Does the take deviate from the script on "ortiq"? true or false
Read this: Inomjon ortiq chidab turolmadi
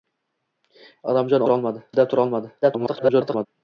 true